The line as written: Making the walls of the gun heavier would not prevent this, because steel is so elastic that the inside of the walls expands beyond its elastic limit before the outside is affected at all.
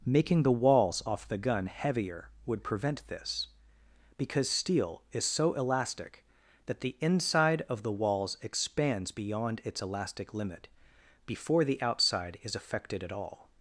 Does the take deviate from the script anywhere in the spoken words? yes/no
yes